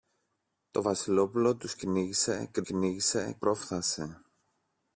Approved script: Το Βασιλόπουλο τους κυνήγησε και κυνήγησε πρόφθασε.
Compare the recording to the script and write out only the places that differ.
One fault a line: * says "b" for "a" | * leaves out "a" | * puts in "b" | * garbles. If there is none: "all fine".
all fine